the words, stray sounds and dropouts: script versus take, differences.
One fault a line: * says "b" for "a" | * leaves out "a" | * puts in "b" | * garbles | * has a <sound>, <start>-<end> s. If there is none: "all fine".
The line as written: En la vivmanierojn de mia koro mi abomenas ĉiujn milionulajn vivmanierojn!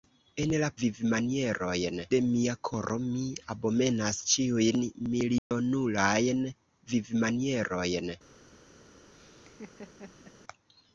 * has a dropout, 5.4-5.5 s
* has a laugh, 9.1-10.4 s